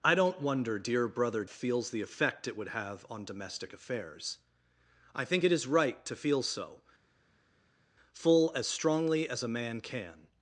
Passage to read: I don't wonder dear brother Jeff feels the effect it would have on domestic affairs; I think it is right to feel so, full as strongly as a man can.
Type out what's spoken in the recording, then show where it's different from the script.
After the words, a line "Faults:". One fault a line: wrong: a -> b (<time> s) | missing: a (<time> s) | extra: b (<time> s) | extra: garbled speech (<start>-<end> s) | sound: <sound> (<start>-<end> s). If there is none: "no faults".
I don't wonder dear brother Feels the effect it would have on domestic affairs; I think it is right to feel so, full as strongly as a man can.
Faults:
missing: Jeff (1.4 s)